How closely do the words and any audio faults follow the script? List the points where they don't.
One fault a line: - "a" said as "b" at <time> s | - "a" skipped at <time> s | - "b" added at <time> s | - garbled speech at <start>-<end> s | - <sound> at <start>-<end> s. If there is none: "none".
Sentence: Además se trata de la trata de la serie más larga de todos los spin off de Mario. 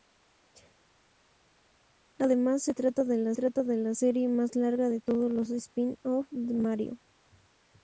none